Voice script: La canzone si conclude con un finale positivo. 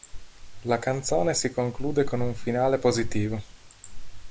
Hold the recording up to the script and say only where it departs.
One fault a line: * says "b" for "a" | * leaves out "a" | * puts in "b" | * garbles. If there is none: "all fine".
all fine